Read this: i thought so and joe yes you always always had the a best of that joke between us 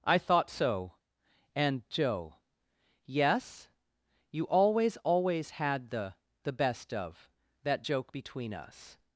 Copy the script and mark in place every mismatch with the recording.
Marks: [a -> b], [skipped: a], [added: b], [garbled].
i thought so and joe yes you always always had the [a -> the] best of that joke between us